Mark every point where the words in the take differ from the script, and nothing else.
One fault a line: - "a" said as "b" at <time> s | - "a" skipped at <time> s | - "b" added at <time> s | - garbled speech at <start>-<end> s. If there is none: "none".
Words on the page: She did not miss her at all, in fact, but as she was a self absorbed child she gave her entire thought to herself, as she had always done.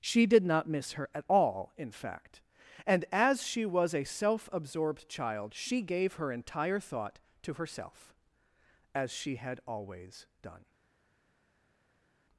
- "but" said as "and" at 2.8 s